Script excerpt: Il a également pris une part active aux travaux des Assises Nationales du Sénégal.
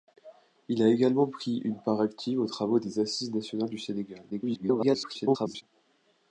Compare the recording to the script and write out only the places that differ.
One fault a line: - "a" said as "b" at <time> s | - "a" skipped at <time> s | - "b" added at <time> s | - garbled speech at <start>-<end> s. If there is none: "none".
- garbled speech at 4.3-5.6 s